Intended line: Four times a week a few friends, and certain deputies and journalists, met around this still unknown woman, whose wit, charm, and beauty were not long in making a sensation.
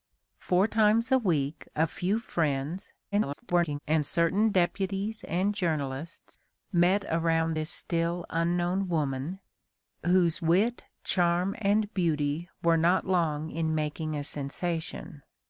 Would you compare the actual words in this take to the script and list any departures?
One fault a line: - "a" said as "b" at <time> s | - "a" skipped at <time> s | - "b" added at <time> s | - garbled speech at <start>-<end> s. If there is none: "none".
- garbled speech at 3.1-3.8 s